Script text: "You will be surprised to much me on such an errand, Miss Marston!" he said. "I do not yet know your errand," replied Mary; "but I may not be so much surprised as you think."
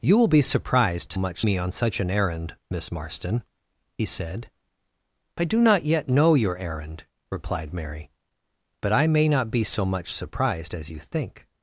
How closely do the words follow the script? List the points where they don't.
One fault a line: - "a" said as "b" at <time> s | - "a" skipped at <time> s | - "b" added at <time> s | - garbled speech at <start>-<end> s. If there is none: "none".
none